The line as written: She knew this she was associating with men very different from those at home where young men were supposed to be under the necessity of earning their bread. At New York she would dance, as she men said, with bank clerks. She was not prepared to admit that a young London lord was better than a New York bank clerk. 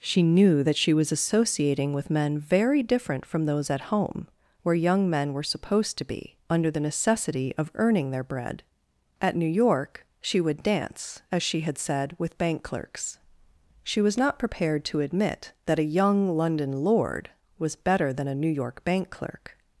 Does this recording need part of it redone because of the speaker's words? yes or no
yes